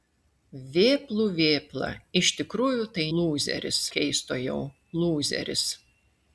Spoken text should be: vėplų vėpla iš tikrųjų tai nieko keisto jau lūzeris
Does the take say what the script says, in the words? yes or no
no